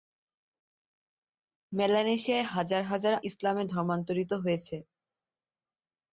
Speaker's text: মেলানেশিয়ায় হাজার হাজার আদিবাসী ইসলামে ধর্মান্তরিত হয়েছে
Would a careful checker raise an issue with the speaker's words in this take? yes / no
yes